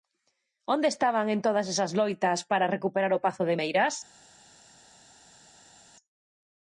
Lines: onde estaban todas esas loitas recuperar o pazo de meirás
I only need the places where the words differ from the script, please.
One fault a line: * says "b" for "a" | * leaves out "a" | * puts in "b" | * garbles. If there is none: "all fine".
* puts in "en"
* puts in "para"